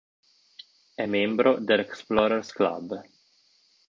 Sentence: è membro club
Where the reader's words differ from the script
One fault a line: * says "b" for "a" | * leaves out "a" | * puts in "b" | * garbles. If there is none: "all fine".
* puts in "dell'explorers"